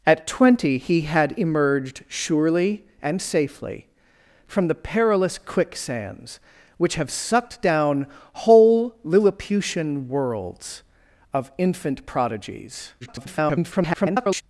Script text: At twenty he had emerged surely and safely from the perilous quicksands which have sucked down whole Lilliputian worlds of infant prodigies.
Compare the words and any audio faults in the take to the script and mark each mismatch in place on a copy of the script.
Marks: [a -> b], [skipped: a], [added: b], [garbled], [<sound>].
At twenty he had emerged surely and safely from the perilous quicksands which have sucked down whole Lilliputian worlds of infant prodigies. [garbled]